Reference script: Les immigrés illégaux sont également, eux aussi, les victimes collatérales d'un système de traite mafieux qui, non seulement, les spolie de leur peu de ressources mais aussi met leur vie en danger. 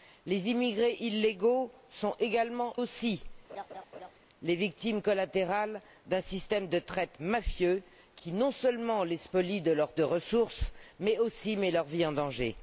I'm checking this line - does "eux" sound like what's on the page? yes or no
no